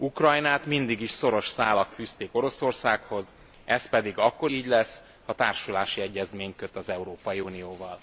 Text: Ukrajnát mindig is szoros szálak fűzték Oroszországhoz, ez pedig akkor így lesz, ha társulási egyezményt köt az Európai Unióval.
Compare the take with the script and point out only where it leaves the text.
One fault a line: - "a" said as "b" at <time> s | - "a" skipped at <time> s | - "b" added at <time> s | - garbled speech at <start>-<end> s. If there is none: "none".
none